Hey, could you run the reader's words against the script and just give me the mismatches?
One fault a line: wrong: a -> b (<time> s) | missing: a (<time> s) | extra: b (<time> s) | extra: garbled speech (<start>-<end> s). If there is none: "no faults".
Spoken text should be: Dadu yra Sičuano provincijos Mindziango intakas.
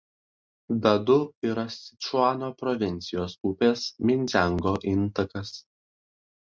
extra: upės (3.5 s)